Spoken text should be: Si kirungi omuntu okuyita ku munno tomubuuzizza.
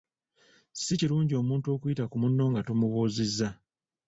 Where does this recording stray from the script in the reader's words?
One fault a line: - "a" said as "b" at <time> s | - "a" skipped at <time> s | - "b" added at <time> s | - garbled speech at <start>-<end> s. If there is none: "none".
- "nga" added at 2.5 s